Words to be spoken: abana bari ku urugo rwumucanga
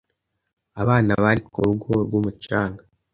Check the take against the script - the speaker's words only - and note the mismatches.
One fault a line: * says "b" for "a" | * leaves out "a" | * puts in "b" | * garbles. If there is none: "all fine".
all fine